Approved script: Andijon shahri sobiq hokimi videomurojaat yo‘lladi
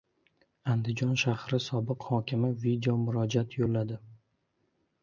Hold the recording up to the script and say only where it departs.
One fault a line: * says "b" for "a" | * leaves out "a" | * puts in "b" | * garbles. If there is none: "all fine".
all fine